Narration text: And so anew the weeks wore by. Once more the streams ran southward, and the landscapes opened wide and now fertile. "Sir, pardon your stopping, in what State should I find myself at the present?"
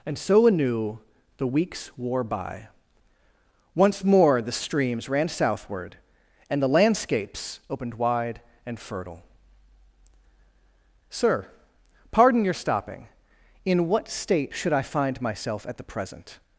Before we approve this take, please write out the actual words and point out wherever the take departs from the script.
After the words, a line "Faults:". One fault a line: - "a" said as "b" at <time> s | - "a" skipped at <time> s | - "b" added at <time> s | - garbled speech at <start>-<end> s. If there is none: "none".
And so anew the weeks wore by. Once more the streams ran southward, and the landscapes opened wide and fertile. "Sir, pardon your stopping, in what State should I find myself at the present?"
Faults:
- "now" skipped at 8.8 s